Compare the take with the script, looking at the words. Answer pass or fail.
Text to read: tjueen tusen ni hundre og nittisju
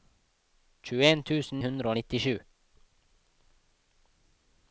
fail